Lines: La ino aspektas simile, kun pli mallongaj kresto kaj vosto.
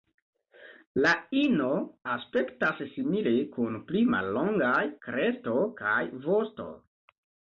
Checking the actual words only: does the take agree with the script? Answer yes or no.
yes